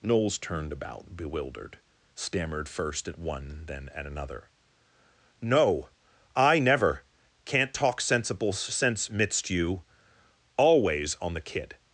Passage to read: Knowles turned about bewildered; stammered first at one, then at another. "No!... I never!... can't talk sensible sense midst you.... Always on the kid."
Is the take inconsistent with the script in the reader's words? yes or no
no